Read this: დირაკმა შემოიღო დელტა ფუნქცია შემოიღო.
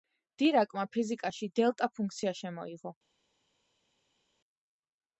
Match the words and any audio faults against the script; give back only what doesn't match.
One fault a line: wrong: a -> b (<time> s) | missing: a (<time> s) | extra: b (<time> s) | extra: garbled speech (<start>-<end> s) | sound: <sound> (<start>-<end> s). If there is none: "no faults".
wrong: შემოიღო -> ფიზიკაში (0.9 s)